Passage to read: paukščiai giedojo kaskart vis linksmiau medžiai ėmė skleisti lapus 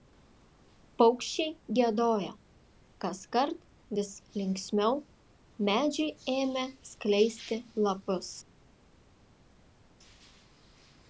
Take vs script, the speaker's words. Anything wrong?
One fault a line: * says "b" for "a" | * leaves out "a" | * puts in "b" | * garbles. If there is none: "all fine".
all fine